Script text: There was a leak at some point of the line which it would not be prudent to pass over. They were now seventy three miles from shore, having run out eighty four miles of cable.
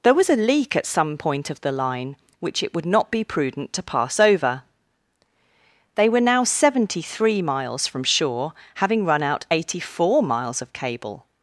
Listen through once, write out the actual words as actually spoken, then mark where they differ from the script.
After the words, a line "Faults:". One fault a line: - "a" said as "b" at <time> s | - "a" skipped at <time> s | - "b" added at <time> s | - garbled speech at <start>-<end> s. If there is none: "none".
There was a leak at some point of the line which it would not be prudent to pass over. They were now seventy three miles from shore, having run out eighty four miles of cable.
Faults:
none